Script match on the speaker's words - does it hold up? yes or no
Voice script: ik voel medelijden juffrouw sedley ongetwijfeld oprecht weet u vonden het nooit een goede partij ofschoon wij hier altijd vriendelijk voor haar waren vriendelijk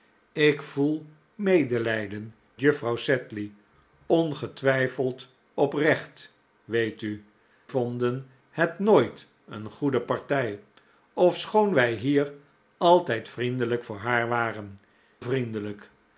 yes